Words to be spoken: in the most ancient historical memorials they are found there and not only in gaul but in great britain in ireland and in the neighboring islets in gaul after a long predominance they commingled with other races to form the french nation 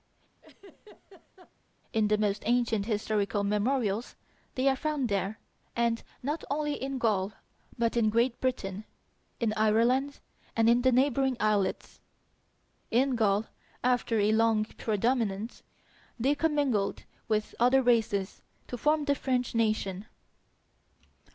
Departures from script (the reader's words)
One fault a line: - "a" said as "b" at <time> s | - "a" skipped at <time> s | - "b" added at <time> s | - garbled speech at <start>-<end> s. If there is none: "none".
none